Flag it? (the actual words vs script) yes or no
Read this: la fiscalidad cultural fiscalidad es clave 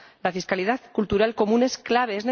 yes